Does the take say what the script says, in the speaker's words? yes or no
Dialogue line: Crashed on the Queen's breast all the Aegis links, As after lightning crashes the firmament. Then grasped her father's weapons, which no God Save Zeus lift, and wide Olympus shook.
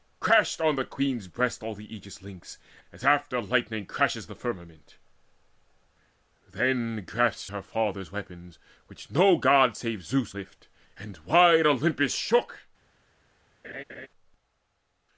yes